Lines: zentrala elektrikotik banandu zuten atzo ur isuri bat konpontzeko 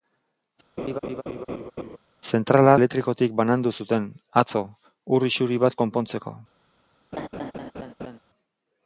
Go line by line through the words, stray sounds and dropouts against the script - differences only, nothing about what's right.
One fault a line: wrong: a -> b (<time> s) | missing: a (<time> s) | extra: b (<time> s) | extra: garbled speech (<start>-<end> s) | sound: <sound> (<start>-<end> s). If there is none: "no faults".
sound: laugh (0.8-2.0 s)
sound: laugh (7.1-8.2 s)